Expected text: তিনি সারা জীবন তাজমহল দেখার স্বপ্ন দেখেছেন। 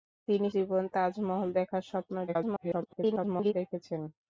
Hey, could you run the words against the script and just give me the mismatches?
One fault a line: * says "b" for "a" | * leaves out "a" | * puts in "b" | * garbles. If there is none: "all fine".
* leaves out "সারা"
* garbles